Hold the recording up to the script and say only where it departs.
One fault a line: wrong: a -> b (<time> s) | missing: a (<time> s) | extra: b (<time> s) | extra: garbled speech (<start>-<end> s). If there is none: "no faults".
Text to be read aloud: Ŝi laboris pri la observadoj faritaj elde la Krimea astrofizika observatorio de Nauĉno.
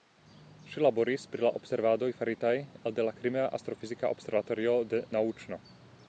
no faults